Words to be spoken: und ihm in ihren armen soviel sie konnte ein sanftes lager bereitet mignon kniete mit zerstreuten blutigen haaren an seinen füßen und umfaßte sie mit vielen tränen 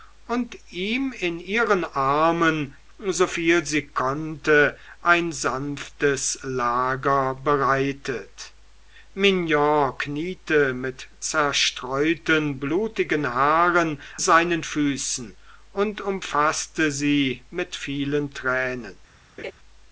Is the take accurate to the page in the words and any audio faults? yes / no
no